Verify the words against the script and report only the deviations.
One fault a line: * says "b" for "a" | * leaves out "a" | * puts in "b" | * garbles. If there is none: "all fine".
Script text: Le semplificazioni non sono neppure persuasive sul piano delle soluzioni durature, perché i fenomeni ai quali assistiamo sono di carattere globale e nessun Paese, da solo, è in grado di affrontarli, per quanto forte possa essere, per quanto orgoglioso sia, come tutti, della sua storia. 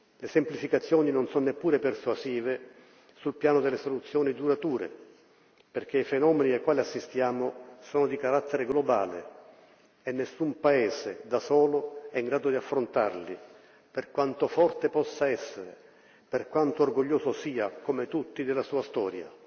all fine